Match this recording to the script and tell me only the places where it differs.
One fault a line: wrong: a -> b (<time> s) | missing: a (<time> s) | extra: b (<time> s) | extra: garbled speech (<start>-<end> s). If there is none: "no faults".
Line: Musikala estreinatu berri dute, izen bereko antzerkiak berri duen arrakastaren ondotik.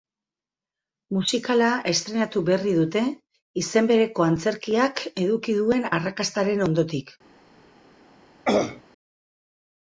wrong: berri -> eduki (5.2 s)